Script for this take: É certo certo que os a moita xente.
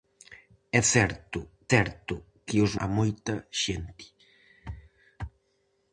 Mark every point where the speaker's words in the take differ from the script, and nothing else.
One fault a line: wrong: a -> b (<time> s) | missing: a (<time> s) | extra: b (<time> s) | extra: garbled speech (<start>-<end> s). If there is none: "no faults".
no faults